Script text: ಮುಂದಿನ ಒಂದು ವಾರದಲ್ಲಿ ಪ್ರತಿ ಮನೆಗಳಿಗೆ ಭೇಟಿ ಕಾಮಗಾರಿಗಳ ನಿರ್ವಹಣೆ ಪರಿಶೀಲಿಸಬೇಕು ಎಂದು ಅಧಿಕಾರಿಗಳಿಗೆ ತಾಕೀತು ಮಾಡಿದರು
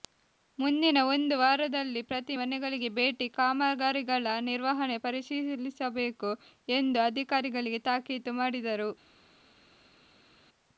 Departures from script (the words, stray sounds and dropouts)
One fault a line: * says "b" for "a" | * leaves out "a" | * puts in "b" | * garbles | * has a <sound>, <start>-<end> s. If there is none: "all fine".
all fine